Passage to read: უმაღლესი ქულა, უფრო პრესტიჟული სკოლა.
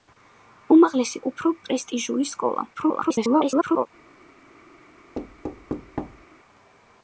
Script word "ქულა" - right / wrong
wrong